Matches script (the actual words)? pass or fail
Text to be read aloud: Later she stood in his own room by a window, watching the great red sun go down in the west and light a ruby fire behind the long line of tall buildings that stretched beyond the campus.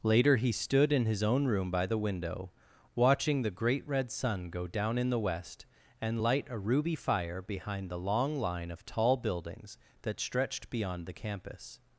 fail